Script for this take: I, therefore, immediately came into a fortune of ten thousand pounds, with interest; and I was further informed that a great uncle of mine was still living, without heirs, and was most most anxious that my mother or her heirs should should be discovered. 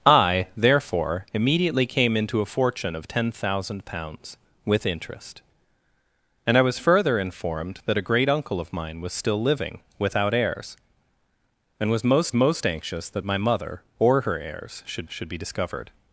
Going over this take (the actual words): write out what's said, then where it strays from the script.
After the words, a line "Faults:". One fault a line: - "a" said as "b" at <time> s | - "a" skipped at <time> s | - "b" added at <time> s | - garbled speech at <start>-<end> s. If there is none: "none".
I, therefore, immediately came into a fortune of ten thousand pounds, with interest; and I was further informed that a great uncle of mine was still living, without heirs, and was most most anxious that my mother or her heirs should should be discovered.
Faults:
none